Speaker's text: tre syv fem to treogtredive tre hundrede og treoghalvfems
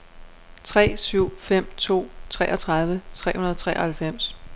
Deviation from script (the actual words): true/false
false